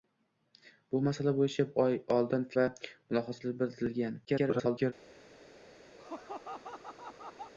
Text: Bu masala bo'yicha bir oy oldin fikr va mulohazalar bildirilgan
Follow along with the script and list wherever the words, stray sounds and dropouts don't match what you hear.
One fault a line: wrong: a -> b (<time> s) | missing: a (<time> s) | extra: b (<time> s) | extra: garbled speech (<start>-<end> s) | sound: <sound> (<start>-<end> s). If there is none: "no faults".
missing: bir (1.6 s)
missing: fikr (2.5 s)
extra: garbled speech (4.3-4.9 s)
sound: laugh (6.0-7.5 s)